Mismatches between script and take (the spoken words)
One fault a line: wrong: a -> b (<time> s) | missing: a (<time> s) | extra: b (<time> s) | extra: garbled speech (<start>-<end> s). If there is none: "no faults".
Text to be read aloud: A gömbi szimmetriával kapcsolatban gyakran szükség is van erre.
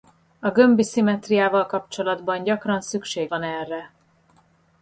missing: is (3.3 s)